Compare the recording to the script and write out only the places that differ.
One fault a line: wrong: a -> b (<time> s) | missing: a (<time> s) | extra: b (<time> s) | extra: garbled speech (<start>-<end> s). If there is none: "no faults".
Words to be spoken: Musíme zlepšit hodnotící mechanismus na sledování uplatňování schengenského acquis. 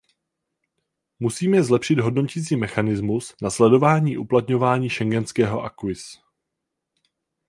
no faults